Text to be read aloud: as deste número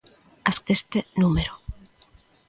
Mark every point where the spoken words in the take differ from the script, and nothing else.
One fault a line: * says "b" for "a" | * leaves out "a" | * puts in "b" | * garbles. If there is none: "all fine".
all fine